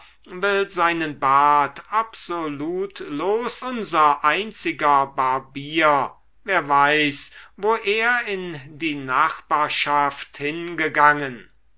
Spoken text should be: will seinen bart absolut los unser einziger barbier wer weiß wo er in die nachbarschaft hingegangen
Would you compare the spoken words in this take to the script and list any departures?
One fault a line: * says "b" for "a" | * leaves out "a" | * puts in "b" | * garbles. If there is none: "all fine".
all fine